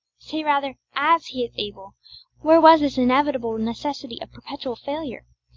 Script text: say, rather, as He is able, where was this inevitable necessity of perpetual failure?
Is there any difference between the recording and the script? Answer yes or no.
no